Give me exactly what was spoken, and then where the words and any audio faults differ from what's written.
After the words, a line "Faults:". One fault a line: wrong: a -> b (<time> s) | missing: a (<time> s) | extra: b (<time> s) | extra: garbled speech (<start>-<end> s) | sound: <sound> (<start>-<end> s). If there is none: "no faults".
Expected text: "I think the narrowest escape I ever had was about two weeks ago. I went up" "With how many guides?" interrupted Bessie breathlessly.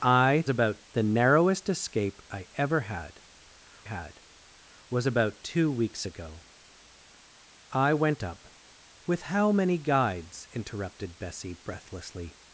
"I about the narrowest escape I ever had had was about two weeks ago. I went up" "With how many guides?" interrupted Bessie breathlessly.
Faults:
wrong: think -> about (0.5 s)
extra: had (3.8 s)